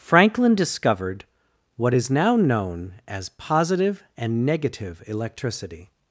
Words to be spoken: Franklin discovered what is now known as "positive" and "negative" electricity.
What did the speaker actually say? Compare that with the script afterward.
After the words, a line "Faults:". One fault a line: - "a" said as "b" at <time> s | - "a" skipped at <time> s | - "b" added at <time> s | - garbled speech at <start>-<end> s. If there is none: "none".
Franklin discovered what is now known as "positive" and "negative" electricity.
Faults:
none